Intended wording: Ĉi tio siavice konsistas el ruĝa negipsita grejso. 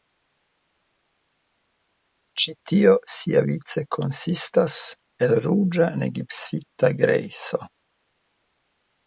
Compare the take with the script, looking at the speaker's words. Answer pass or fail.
pass